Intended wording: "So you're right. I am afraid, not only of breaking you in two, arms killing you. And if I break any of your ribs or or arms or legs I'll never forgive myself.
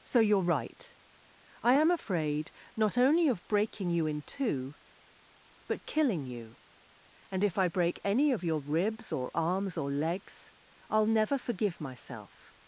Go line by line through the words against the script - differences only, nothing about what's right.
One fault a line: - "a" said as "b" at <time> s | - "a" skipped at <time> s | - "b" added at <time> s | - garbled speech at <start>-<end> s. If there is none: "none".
- "arms" said as "but" at 5.7 s
- "or" skipped at 9.3 s